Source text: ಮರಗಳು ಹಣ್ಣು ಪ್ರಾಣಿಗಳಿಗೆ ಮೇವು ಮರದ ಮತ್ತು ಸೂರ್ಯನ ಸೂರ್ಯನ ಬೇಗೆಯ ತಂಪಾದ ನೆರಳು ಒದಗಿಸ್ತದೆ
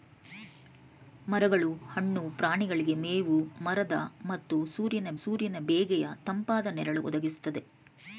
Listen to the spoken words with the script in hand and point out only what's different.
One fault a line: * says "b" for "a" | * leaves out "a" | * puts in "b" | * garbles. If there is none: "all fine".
all fine